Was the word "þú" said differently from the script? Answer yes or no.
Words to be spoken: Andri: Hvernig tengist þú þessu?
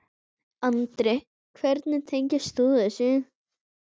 no